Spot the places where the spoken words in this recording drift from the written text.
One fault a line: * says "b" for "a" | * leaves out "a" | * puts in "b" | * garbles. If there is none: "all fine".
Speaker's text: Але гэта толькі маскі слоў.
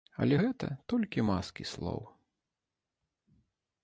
all fine